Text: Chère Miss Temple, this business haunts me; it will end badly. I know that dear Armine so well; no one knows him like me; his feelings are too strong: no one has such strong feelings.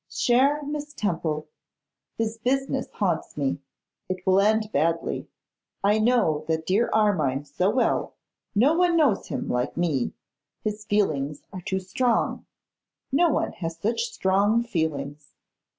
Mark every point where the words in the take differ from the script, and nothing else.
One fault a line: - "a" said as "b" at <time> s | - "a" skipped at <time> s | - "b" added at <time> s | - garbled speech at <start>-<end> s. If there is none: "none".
none